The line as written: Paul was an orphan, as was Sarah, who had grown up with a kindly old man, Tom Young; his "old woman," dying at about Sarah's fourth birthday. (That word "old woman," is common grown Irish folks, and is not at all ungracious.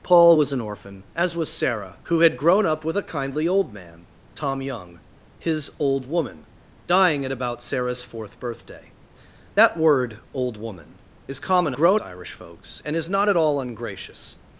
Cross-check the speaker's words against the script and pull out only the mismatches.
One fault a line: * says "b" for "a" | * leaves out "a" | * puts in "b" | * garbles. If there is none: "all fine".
all fine